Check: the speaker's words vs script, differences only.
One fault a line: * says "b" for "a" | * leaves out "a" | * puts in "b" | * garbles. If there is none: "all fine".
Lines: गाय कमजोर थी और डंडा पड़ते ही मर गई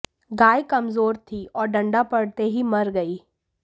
all fine